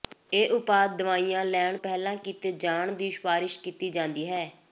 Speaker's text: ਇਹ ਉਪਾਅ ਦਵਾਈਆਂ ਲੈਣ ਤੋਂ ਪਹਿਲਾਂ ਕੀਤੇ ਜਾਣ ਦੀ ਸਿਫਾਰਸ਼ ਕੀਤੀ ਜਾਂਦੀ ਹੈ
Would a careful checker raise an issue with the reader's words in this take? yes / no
yes